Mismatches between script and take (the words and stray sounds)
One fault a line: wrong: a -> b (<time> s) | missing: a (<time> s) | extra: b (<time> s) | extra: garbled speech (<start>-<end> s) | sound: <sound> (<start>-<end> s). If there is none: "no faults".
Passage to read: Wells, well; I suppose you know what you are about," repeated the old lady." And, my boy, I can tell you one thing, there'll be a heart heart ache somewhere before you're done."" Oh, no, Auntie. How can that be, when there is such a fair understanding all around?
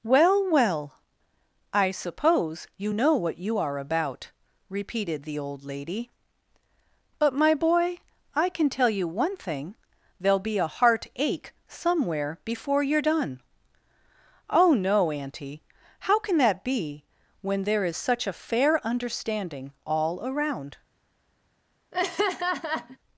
wrong: Wells -> Well (0.0 s)
wrong: And -> But (7.2 s)
missing: heart (11.1 s)
sound: laugh (21.9-23.0 s)